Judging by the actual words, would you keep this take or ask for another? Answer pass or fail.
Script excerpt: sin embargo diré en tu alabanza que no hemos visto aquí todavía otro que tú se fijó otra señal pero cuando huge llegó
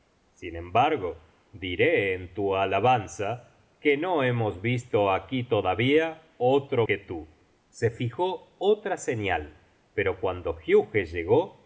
pass